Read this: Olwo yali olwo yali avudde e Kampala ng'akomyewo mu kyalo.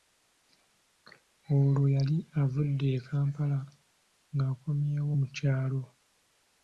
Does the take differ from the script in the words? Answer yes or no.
yes